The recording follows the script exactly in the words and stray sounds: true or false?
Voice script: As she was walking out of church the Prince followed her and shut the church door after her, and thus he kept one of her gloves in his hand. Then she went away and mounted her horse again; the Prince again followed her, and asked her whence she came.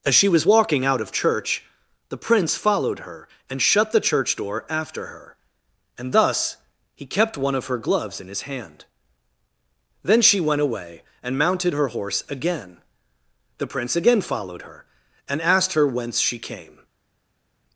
true